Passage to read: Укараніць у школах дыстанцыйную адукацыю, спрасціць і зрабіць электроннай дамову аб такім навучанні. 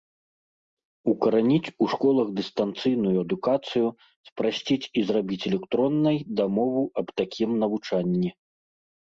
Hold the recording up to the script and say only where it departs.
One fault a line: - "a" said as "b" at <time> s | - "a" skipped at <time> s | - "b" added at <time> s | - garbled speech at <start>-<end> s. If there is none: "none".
none